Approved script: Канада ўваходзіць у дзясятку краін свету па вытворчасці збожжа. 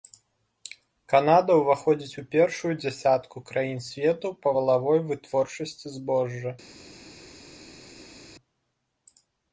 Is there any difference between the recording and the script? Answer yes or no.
yes